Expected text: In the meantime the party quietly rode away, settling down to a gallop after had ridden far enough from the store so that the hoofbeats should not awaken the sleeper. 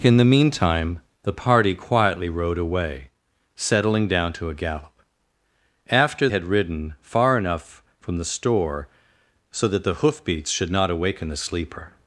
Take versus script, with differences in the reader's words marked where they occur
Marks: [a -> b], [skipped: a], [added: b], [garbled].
In the meantime the party quietly rode away, settling down to a gallop after had ridden far enough from the store so that the hoofbeats should not awaken the sleeper.